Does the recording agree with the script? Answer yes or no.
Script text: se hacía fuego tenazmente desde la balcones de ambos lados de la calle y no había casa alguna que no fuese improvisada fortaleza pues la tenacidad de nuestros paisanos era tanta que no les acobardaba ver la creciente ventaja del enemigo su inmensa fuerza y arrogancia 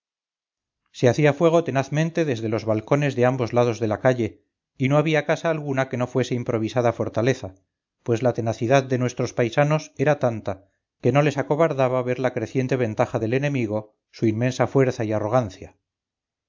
no